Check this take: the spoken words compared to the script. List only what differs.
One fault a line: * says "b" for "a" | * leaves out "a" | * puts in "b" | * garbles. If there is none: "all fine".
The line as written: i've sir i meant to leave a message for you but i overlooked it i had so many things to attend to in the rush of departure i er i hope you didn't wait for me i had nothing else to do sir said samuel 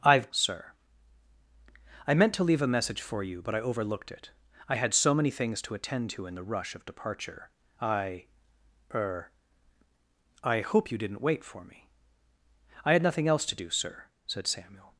all fine